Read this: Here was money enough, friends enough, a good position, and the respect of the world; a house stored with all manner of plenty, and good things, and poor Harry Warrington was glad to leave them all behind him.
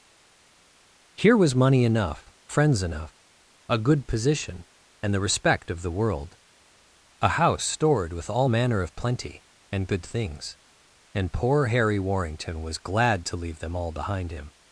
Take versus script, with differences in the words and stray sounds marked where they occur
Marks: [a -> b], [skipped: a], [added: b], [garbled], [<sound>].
Here was money enough, friends enough, a good position, and the respect of the world; a house stored with all manner of plenty, and good things, and poor Harry Warrington was glad to leave them all behind him.